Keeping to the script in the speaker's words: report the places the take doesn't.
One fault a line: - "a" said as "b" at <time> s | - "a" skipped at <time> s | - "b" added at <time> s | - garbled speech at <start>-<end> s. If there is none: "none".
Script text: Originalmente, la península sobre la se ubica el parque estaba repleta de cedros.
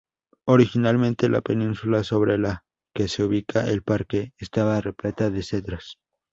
- "que" added at 3.0 s